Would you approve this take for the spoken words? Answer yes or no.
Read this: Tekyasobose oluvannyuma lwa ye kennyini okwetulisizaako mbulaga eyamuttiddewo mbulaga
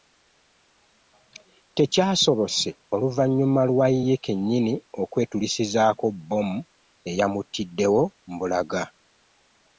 no